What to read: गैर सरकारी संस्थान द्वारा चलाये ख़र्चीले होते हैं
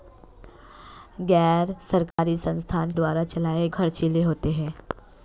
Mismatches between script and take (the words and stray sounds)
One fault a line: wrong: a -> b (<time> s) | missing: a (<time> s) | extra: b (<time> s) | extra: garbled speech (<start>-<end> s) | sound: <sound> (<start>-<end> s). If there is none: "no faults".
sound: dropout (2.1-2.2 s)